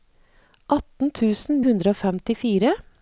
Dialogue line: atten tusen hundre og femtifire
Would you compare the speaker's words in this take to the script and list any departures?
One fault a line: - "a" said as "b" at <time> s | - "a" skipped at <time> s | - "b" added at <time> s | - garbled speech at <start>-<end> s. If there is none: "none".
none